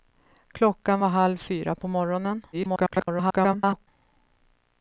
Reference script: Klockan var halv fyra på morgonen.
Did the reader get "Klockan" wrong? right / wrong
right